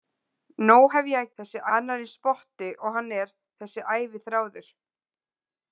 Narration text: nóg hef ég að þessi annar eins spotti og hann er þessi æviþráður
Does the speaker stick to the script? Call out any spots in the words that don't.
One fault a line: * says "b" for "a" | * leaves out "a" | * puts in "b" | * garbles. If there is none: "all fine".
all fine